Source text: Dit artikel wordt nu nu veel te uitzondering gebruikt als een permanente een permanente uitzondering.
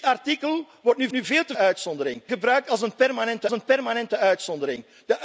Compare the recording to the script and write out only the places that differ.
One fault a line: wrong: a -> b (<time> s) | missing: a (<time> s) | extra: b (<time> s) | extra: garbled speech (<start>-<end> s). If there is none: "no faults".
no faults